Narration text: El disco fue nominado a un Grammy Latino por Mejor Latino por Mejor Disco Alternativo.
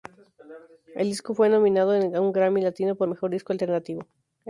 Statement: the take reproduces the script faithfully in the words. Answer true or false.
false